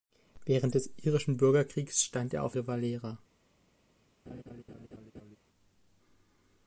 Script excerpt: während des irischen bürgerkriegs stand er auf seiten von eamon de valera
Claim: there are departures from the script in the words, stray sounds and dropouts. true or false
true